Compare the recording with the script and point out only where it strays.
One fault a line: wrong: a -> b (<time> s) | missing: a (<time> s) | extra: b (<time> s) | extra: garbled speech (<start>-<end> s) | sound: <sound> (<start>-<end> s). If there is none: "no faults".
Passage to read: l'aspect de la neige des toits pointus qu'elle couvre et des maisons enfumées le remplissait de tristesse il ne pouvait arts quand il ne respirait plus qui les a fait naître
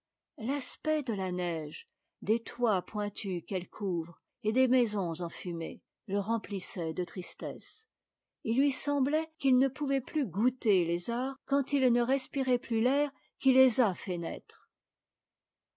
extra: lui semblait qu'il (8.6 s)
extra: plus goûter les (10.0 s)
extra: l'air (12.8 s)